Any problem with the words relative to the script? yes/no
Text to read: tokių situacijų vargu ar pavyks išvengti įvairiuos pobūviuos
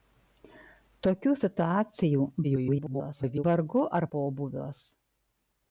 yes